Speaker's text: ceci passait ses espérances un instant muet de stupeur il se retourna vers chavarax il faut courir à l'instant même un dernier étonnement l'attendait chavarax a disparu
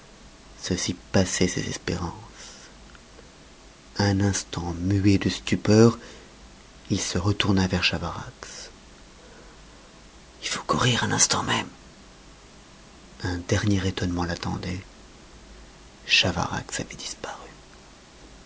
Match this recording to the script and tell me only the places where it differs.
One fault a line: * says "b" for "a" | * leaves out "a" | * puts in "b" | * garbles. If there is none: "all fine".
* says "avait" for "a"